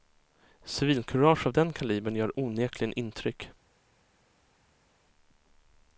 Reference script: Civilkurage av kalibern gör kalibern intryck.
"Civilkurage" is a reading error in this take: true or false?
false